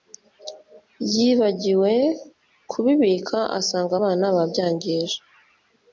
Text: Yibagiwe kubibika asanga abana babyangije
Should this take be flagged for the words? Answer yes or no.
no